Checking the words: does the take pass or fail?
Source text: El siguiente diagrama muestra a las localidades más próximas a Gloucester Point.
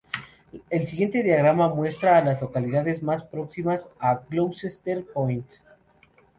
pass